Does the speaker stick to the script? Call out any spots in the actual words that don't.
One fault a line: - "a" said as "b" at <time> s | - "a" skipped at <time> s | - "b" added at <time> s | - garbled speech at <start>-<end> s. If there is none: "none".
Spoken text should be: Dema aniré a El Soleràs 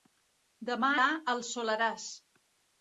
- "aniré" skipped at 0.9 s